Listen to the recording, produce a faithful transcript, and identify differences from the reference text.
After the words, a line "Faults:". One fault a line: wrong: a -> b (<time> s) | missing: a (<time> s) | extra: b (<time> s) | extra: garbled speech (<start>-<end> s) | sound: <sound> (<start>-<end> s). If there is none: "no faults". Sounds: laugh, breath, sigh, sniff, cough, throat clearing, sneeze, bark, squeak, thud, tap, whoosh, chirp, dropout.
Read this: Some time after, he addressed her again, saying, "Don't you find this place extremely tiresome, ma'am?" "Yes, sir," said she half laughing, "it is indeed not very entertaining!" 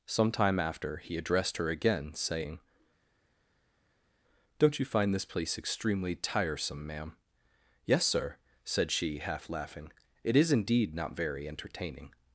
Some time after, he addressed her again, saying, "Don't you find this place extremely tiresome, ma'am?" "Yes, sir," said she half laughing, "it is indeed not very entertaining!"
Faults:
no faults